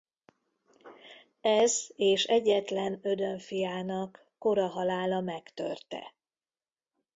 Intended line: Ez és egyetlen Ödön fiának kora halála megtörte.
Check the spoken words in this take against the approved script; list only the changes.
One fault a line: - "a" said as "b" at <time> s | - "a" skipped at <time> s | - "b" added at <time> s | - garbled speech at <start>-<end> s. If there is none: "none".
none